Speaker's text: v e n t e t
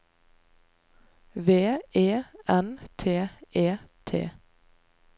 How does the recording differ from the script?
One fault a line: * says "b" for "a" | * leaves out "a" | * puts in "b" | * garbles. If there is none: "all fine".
all fine